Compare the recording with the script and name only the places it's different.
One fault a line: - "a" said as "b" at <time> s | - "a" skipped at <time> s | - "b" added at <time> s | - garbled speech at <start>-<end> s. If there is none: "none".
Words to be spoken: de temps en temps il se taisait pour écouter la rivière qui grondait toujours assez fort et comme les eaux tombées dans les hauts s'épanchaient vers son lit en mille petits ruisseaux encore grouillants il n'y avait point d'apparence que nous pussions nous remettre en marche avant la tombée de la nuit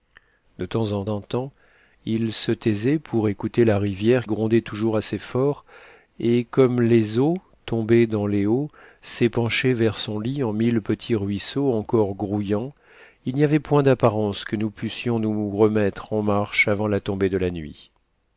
- "en" added at 1.1 s
- "qui" skipped at 4.3 s